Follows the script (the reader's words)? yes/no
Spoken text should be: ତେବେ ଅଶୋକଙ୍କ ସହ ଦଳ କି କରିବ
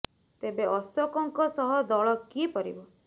yes